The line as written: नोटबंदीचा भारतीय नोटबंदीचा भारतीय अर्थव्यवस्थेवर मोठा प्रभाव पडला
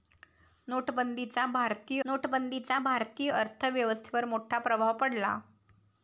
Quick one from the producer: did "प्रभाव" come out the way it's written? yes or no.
yes